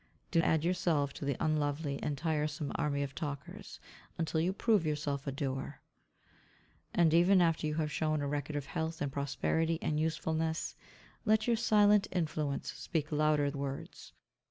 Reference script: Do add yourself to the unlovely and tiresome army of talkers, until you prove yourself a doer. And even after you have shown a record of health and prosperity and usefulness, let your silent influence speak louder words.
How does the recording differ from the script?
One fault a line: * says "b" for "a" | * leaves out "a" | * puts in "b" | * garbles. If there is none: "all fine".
all fine